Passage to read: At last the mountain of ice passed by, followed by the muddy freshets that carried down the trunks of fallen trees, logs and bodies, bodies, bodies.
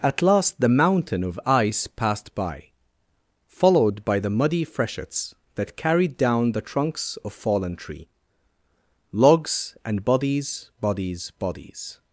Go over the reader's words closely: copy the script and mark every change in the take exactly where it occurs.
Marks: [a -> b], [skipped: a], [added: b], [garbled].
At last the mountain of ice passed by, followed by the muddy freshets that carried down the trunks of fallen [trees, -> tree] logs and bodies, bodies, bodies.